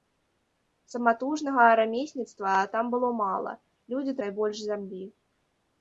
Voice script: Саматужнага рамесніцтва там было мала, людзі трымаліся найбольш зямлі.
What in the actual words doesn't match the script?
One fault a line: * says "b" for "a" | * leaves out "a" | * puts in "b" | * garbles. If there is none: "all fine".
* leaves out "трымаліся"